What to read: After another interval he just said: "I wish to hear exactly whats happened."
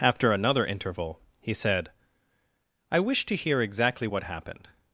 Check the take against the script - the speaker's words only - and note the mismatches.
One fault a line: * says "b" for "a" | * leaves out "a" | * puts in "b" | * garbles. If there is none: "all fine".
* leaves out "just"
* says "what" for "whats"